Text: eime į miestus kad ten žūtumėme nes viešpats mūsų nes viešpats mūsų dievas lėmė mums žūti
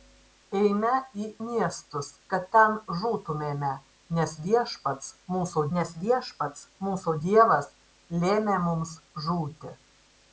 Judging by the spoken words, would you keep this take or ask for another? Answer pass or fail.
pass